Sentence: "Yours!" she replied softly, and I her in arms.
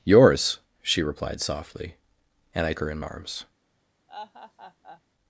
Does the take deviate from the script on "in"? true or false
false